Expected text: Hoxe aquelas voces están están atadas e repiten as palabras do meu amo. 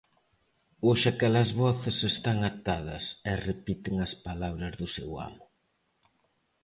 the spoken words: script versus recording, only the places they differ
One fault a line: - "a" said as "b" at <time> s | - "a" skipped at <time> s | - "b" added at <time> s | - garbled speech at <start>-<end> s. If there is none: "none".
- "están" skipped at 2.4 s
- "meu" said as "seu" at 5.0 s